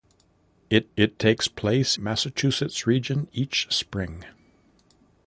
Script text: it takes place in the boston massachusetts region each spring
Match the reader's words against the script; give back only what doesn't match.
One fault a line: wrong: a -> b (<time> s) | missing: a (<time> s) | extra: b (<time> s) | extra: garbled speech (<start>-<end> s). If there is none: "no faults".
extra: it (1.0 s)
missing: in the boston (2.0 s)